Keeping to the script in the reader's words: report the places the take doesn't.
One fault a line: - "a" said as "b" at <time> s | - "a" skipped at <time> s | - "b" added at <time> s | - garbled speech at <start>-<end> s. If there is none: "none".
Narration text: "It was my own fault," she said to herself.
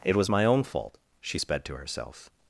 - "said" said as "sped" at 1.4 s